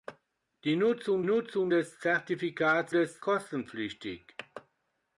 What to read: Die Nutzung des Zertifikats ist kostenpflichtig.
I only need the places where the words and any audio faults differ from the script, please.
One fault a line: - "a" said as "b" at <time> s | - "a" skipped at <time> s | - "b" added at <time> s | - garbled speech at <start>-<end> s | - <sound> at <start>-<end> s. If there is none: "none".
- "Nutzung" added at 1.2 s
- "ist" said as "des" at 2.9 s